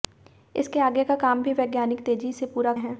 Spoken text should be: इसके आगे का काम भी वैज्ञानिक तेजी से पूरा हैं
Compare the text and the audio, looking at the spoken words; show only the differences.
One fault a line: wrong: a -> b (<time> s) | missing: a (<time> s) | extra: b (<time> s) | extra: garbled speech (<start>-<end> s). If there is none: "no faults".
no faults